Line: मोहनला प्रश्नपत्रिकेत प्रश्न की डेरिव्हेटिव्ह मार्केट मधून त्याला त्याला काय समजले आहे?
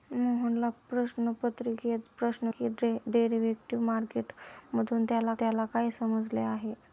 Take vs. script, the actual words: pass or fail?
pass